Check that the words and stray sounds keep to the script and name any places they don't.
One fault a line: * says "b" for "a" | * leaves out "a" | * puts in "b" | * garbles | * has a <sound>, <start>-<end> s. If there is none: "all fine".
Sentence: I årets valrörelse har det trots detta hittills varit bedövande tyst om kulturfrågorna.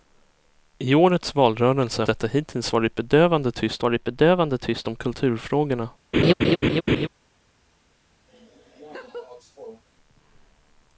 * says "detta hittills varit bedövande tyst" for "har det trots detta hittills"
* has a laugh, 6.1-7.1 s
* has a laugh, 8.3-9.8 s